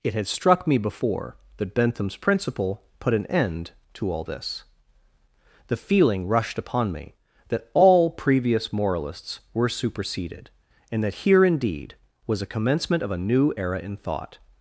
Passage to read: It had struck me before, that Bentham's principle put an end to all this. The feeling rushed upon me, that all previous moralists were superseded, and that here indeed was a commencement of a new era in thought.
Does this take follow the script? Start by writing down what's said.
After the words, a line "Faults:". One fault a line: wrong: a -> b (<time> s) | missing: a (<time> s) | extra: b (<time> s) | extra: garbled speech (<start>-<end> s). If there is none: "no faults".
It had struck me before, that Bentham's principle put an end to all this. The feeling rushed upon me, that all previous moralists were superseded, and that here indeed was a commencement of a new era in thought.
Faults:
no faults